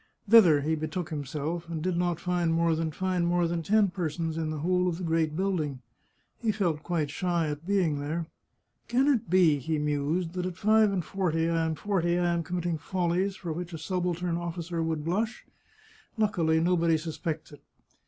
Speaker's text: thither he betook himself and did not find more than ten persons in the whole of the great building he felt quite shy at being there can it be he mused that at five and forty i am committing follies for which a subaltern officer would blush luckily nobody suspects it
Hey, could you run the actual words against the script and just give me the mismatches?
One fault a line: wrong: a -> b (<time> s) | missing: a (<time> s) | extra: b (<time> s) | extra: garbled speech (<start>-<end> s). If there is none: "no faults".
extra: find more than (2.9 s)
extra: forty i am (11.7 s)